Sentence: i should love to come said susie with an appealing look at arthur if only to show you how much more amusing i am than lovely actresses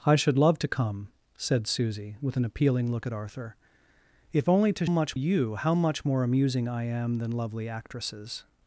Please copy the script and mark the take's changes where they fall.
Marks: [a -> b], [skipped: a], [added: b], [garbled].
i should love to come said susie with an appealing look at arthur if only to [show -> much] you how much more amusing i am than lovely actresses